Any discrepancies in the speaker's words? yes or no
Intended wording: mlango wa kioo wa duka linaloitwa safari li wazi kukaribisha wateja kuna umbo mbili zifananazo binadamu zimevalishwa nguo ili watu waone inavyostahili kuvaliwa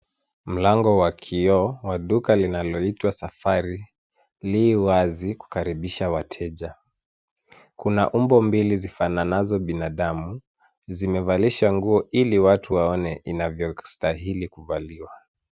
no